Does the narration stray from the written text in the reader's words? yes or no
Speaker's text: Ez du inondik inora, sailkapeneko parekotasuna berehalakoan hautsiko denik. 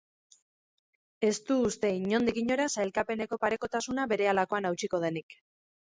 yes